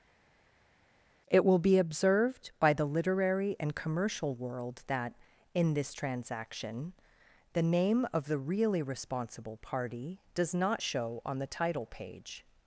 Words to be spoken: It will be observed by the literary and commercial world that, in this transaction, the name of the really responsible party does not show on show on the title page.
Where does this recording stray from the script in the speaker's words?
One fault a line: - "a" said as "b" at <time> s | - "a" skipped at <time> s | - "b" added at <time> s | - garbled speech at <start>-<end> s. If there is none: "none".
- "show on" skipped at 11.4 s